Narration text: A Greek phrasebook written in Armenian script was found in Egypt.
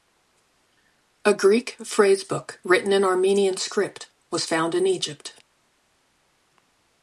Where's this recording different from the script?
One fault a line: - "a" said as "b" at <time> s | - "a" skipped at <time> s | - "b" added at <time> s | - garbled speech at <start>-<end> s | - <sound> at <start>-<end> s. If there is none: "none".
none